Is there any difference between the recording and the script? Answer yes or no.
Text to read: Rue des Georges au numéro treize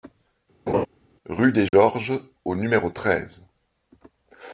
no